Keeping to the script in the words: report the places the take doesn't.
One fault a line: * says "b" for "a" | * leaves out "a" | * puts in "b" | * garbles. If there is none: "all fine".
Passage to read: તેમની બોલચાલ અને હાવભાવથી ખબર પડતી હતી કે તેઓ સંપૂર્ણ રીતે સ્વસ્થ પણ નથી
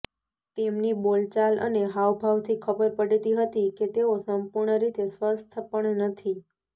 all fine